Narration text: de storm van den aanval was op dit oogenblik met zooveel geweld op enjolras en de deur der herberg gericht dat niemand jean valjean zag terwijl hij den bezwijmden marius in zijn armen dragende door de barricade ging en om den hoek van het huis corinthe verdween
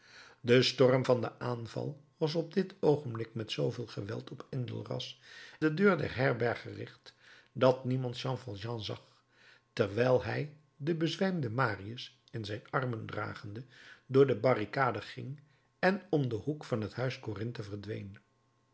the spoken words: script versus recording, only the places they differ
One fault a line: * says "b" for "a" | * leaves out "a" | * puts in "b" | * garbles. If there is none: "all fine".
* leaves out "en"